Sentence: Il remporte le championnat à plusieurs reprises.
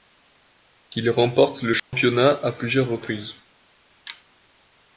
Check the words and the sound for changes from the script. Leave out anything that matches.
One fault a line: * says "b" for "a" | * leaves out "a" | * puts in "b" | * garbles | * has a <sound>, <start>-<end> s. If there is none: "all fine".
* has a dropout, 1.8-1.9 s